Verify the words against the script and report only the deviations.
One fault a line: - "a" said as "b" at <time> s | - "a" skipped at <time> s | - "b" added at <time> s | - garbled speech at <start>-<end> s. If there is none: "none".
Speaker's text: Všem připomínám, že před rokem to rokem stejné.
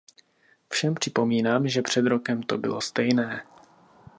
- "rokem" said as "bylo" at 2.6 s